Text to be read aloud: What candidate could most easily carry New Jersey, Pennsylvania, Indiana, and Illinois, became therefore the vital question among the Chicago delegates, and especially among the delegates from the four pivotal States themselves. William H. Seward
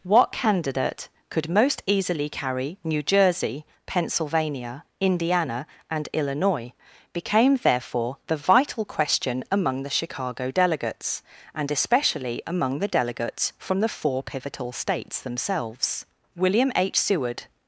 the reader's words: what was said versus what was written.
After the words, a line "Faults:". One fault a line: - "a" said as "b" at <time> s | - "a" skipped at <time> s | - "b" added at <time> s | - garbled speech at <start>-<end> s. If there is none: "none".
What candidate could most easily carry New Jersey, Pennsylvania, Indiana, and Illinois, became therefore the vital question among the Chicago delegates, and especially among the delegates from the four pivotal States themselves. William H. Seward
Faults:
none